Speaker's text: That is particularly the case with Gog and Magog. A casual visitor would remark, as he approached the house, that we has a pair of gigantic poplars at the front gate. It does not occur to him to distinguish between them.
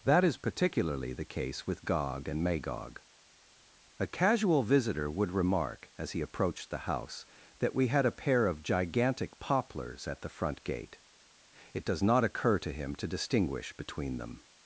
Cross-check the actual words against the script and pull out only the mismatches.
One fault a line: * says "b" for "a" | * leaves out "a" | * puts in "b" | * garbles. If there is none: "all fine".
* says "had" for "has"